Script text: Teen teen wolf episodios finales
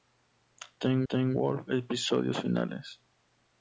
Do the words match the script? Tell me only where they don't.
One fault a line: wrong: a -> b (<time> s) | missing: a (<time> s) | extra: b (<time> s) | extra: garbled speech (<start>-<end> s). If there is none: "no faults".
no faults